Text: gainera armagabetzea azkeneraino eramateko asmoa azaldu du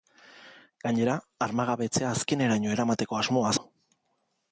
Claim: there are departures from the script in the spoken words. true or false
true